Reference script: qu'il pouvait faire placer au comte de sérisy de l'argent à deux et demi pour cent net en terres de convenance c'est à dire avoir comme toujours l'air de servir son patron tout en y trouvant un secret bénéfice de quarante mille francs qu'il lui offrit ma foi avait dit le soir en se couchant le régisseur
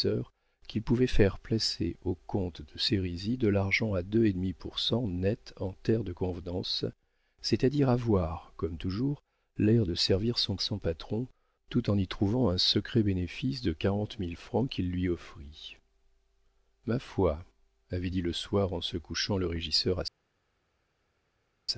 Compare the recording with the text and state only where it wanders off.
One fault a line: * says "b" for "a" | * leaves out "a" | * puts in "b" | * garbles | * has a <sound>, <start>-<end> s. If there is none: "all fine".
* puts in "son"